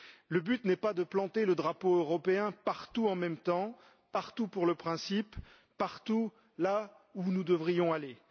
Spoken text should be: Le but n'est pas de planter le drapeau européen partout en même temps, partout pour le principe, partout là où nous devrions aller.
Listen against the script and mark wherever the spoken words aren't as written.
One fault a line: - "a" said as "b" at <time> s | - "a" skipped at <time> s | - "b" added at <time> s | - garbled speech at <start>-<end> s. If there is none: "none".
none